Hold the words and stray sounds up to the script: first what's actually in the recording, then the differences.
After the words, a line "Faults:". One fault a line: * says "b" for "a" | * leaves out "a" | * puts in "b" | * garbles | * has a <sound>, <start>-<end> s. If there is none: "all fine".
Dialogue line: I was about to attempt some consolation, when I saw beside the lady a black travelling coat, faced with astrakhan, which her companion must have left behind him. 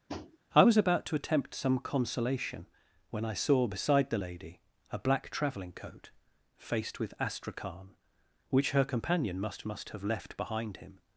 I was about to attempt some consolation, when I saw beside the lady a black travelling coat, faced with astrakhan, which her companion must must have left behind him.
Faults:
* has a tap, 0.1-0.4 s
* puts in "must"